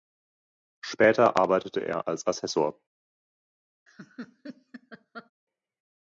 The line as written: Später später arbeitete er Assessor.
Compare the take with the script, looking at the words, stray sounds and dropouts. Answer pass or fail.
fail